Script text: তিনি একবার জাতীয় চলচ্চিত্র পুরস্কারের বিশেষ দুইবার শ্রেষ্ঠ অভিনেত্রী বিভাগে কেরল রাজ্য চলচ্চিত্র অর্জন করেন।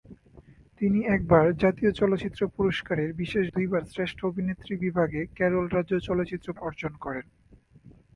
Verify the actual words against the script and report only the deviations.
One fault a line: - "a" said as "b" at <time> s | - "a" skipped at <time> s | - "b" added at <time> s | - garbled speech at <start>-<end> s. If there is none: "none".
none